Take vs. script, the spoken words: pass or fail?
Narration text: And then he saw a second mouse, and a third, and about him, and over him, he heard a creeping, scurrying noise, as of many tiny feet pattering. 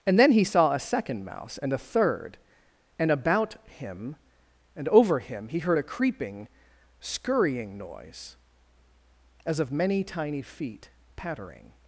pass